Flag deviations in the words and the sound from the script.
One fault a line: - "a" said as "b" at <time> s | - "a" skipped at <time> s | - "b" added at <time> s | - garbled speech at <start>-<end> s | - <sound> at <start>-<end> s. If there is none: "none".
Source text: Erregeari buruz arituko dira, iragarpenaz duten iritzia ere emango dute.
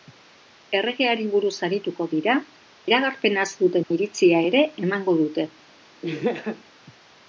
- dropout at 3.8-3.9 s
- laugh at 6.0-6.6 s